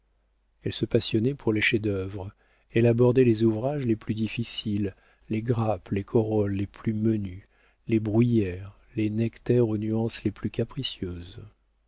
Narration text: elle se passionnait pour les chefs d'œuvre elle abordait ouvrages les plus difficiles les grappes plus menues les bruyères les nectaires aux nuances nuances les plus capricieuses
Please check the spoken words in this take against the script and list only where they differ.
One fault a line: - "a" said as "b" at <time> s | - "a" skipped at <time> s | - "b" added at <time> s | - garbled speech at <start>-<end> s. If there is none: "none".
- "les" added at 3.2 s
- "les corolles les" added at 5.9 s
- "nuances" skipped at 10.2 s